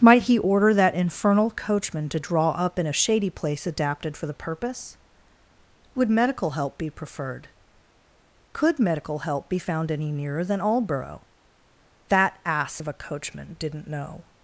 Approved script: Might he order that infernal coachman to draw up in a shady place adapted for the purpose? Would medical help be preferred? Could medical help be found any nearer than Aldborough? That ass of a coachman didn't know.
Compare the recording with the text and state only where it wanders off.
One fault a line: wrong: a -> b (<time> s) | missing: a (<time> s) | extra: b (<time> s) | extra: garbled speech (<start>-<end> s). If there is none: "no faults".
no faults